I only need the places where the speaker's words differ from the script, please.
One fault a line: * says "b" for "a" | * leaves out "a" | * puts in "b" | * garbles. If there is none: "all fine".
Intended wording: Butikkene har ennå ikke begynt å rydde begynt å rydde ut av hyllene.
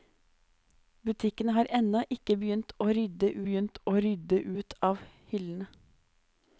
all fine